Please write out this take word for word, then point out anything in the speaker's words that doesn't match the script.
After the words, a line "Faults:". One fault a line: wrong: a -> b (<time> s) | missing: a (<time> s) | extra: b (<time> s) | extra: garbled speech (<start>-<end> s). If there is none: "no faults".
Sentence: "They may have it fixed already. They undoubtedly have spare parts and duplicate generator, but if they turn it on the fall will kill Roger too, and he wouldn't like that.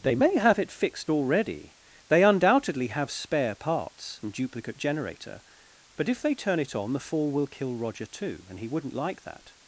"They may have it fixed already. They undoubtedly have spare parts and duplicate generator, but if they turn it on the fall will kill Roger too, and he wouldn't like that.
Faults:
no faults